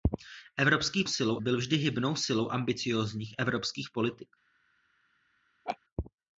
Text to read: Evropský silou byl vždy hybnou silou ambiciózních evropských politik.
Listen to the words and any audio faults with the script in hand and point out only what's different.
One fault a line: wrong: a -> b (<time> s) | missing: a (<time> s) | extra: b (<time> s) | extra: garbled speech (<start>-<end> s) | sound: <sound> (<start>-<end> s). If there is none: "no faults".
sound: laugh (5.7-5.8 s)